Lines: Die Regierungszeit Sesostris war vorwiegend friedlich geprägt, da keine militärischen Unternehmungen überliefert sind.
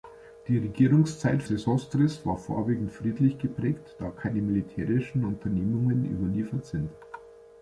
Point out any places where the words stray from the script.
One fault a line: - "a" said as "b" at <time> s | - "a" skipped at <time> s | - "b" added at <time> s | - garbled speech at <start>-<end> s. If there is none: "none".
none